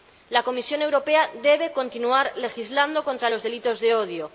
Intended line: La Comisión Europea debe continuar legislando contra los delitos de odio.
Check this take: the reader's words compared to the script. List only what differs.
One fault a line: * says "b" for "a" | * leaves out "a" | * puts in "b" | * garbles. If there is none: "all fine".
all fine